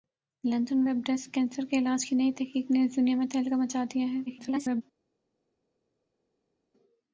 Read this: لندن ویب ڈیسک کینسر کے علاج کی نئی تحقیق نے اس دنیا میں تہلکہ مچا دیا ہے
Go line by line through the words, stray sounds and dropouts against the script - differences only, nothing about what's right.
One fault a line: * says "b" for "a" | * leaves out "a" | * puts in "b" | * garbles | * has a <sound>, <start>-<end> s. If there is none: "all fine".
* garbles